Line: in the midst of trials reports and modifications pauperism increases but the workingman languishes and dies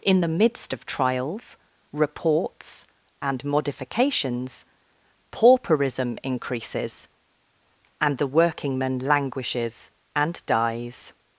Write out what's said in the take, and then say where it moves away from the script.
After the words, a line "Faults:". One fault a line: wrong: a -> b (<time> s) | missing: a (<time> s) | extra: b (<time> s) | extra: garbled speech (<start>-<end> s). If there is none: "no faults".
in the midst of trials reports and modifications pauperism increases and the workingman languishes and dies
Faults:
wrong: but -> and (8.0 s)